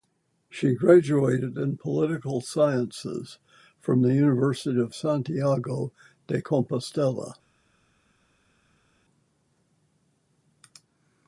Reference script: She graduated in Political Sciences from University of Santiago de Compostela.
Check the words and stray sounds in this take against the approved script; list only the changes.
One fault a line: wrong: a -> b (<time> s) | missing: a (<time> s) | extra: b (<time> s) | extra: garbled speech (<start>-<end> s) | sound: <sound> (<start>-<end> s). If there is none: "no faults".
extra: the (4.0 s)